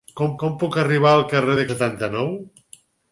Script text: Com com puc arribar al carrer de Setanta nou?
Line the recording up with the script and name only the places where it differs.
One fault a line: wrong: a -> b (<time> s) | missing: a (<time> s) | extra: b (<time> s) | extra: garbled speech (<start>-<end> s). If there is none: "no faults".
no faults